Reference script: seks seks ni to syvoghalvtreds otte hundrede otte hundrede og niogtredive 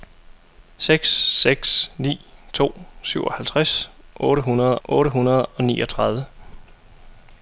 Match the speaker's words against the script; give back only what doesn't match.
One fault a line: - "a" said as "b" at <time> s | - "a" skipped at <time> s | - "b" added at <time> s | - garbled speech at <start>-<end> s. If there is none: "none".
none